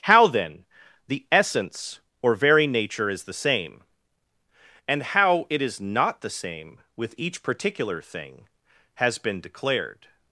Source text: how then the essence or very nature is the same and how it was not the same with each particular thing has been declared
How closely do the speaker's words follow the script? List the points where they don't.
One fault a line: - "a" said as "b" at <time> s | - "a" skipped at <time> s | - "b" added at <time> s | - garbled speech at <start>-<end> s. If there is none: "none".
- "was" said as "is" at 5.6 s